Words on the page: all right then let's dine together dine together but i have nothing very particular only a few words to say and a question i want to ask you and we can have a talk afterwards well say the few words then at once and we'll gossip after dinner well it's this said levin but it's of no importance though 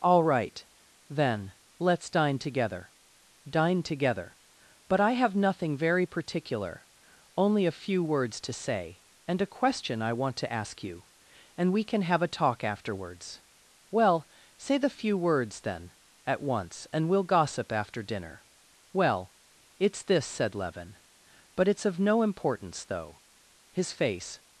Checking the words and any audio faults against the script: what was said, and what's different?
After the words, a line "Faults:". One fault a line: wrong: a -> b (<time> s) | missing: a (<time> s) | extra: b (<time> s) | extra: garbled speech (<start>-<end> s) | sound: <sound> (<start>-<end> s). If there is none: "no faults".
all right then let's dine together dine together but i have nothing very particular only a few words to say and a question i want to ask you and we can have a talk afterwards well say the few words then at once and we'll gossip after dinner well it's this said levin but it's of no importance though his face
Faults:
extra: his face (23.7 s)